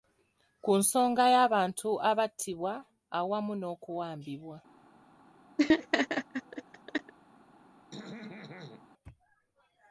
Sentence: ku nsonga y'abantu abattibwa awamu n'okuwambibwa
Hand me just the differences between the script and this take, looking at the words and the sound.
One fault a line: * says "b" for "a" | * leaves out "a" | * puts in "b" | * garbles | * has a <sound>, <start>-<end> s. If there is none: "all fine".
* has a laugh, 5.6-7.1 s
* has a throat clearing, 7.9-8.8 s